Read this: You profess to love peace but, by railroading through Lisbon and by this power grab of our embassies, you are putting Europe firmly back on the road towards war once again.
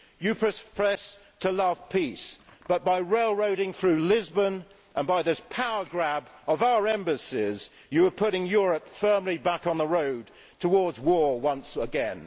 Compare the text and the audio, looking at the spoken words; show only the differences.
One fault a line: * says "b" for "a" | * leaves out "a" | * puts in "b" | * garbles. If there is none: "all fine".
all fine